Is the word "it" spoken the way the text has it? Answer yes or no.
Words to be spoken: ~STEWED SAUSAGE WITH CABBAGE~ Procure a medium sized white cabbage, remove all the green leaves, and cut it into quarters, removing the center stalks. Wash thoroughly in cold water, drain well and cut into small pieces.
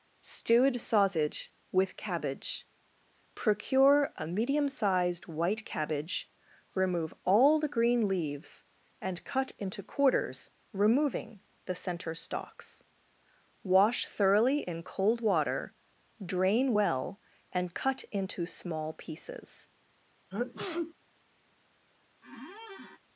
no